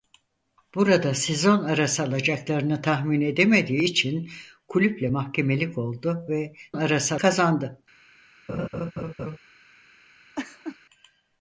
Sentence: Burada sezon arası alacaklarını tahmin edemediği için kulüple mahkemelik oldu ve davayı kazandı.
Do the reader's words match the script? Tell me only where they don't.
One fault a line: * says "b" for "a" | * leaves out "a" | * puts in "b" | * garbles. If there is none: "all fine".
* says "arası" for "davayı"